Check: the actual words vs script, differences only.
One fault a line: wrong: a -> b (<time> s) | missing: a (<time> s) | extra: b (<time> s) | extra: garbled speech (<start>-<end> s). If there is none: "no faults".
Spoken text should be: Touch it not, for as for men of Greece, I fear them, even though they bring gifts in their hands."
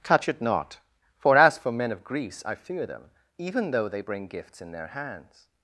no faults